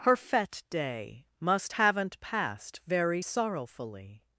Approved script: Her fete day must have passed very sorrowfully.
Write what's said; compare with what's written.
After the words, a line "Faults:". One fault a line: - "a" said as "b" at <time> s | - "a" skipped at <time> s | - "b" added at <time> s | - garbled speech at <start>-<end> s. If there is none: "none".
Her fete day must haven't passed very sorrowfully.
Faults:
- "have" said as "haven't" at 1.7 s